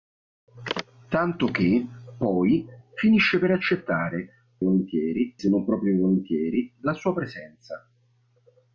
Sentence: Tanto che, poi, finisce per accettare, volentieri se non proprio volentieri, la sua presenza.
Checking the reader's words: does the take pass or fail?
pass